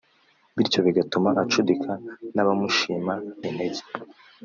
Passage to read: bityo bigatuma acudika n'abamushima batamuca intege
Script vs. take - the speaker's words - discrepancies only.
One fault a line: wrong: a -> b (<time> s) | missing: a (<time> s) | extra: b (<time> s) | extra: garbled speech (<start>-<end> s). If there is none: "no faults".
missing: batamuca (3.1 s)